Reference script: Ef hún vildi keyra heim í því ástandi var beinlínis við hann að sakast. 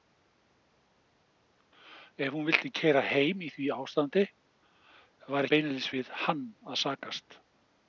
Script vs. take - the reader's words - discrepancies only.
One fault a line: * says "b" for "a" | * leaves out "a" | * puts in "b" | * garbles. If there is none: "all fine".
all fine